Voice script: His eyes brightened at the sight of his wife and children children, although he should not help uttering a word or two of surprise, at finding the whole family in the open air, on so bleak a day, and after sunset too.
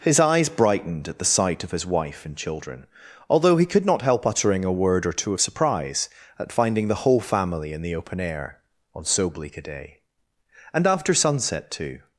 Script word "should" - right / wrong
wrong